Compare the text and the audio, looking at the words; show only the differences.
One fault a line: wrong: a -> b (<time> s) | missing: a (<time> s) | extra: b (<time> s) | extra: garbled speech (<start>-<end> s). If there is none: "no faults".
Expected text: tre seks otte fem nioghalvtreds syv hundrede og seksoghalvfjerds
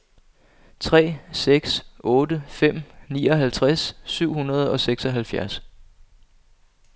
no faults